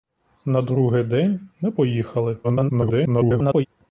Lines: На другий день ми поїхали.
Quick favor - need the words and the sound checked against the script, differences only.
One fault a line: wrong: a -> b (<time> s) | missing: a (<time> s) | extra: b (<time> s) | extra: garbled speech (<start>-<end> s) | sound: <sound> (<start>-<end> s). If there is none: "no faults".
extra: garbled speech (2.4-3.7 s)